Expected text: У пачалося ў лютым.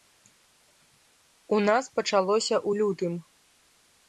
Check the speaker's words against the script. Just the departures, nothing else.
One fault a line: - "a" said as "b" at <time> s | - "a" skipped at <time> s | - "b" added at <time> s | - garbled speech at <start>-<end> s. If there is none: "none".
- "нас" added at 1.7 s